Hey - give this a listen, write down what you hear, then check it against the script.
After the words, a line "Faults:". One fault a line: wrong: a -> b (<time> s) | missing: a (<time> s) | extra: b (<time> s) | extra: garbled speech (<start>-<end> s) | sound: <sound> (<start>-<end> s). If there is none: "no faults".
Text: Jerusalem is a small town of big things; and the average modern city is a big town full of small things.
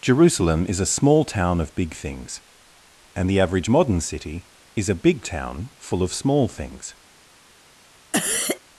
Jerusalem is a small town of big things; and the average modern city is a big town full of small things.
Faults:
sound: cough (8.1-8.6 s)